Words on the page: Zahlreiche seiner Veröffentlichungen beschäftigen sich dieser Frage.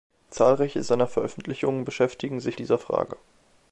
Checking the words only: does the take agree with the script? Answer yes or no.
yes